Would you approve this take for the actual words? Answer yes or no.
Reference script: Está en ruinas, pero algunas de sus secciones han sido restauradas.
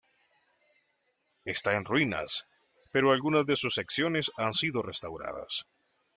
yes